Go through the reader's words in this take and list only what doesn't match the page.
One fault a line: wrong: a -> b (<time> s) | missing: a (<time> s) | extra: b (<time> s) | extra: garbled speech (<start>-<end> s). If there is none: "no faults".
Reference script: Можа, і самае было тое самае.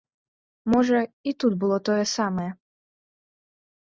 wrong: самае -> тут (1.4 s)